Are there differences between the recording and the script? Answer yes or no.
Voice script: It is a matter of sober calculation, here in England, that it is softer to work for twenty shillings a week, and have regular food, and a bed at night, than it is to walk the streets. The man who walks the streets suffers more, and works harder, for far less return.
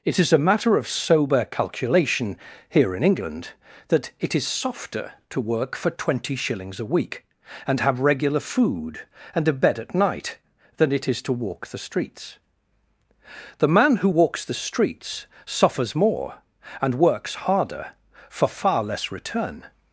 no